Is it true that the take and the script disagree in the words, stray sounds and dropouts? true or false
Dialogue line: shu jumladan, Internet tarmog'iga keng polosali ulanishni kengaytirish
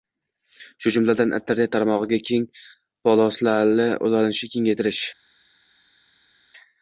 false